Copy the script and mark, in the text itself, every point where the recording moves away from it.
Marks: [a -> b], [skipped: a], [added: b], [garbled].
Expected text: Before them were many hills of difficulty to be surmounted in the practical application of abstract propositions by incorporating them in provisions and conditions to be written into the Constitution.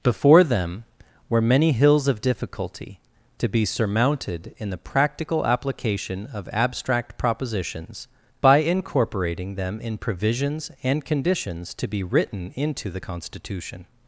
Before them were many hills of difficulty to be surmounted in the practical application of abstract propositions by incorporating them in provisions and conditions to be written into the Constitution.